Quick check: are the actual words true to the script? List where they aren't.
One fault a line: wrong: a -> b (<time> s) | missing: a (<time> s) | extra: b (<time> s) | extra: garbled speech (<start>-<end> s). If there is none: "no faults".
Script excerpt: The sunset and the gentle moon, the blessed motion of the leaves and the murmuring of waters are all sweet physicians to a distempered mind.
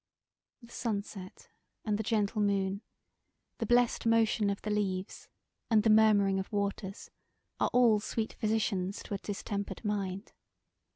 no faults